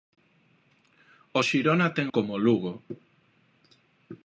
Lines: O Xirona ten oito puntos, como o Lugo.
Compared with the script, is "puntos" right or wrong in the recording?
wrong